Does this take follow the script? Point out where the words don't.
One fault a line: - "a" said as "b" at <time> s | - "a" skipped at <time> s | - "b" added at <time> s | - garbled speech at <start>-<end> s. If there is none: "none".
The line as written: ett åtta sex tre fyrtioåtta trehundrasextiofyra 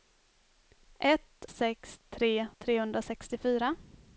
- "åtta" skipped at 1.4 s
- "fyrtioåtta" skipped at 2.5 s